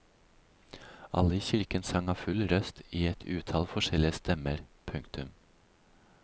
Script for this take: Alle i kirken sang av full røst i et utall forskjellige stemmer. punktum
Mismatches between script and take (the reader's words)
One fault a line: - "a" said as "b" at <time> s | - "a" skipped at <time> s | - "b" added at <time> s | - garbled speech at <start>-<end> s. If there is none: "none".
none